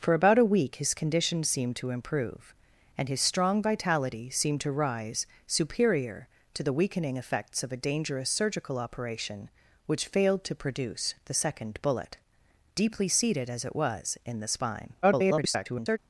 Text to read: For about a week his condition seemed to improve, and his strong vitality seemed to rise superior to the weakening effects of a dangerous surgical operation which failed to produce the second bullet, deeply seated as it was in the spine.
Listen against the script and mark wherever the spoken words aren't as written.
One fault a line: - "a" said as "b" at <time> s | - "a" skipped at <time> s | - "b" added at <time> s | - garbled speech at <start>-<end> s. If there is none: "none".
- garbled speech at 15.0-16.0 s